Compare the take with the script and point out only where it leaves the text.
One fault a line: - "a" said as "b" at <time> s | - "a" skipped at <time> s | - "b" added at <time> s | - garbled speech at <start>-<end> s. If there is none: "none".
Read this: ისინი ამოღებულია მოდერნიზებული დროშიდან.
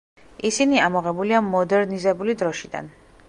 none